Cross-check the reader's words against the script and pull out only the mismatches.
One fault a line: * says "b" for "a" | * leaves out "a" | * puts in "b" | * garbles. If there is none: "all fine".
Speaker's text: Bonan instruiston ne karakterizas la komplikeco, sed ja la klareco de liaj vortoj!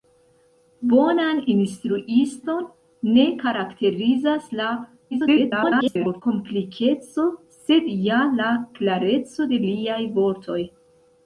* garbles